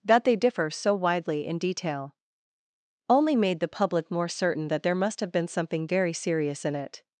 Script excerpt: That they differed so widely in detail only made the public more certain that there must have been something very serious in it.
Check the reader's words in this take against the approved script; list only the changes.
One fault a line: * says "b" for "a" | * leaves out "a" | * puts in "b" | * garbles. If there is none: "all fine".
* says "differ" for "differed"